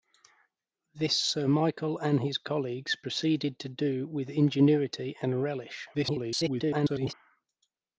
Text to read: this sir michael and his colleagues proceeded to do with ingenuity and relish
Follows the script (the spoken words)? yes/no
no